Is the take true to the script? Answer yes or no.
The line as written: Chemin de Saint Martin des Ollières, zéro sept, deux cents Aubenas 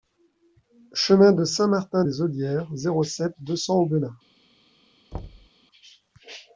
yes